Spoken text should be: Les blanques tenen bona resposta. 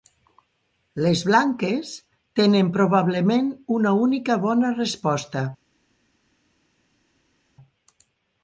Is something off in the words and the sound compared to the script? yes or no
yes